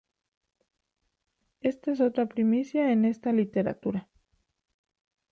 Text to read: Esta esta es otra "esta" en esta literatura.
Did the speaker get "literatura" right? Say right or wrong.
right